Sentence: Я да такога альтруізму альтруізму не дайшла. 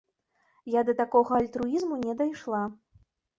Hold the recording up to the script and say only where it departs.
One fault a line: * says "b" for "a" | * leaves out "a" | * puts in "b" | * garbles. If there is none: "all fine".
* leaves out "альтруізму"